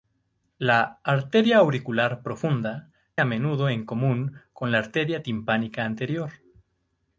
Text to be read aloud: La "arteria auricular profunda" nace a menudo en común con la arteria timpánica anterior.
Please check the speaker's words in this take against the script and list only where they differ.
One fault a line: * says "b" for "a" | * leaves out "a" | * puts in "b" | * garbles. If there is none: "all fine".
* leaves out "nace"